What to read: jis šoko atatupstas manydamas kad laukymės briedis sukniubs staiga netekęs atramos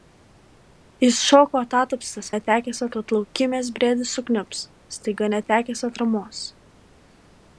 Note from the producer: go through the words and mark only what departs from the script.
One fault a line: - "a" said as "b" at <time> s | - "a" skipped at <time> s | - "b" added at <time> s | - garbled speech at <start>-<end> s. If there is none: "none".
- "manydamas" said as "netekęs" at 2.4 s